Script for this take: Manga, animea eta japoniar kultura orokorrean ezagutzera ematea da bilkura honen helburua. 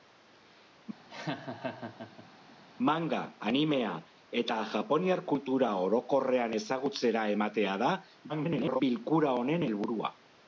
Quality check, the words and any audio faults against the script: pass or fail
fail